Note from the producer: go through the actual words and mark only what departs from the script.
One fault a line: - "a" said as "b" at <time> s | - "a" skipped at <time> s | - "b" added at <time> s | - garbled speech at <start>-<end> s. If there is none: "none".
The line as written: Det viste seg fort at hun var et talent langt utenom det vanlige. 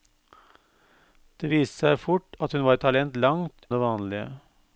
- "utenom" skipped at 3.7 s